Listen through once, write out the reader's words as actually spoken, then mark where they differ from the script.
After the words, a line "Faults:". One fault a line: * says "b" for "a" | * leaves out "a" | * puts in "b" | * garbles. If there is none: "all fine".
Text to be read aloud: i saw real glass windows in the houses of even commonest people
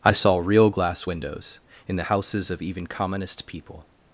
i saw real glass windows in the houses of even commonest people
Faults:
all fine